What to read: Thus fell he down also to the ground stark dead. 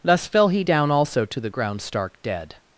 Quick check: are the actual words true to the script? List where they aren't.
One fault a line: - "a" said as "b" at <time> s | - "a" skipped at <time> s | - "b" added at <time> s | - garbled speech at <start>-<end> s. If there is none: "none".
none